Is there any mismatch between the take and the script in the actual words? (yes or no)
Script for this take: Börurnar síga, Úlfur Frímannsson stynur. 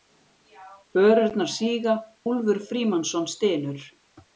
no